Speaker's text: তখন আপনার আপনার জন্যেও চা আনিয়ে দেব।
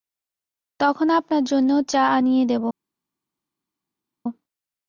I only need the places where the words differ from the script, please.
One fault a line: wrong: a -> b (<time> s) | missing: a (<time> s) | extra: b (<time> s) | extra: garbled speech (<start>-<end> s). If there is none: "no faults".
missing: আপনার (1.4 s)